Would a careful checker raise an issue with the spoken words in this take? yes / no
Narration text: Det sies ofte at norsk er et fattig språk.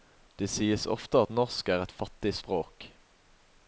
no